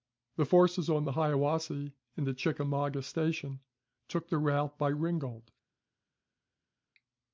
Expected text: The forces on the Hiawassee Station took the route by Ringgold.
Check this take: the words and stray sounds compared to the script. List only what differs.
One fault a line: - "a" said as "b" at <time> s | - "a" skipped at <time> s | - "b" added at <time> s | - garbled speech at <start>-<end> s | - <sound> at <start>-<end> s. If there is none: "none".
- "and at Chickamauga" added at 2.2 s